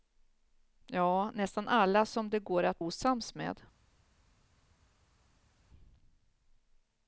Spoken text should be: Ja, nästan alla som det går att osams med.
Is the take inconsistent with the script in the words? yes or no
no